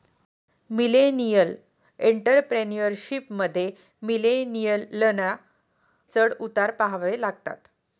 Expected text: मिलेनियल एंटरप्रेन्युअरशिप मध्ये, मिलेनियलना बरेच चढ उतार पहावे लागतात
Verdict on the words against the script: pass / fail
fail